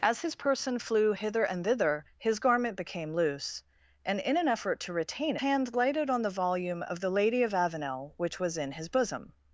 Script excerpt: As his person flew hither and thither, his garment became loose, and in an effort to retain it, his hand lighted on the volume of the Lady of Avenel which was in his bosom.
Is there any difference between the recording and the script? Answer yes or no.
yes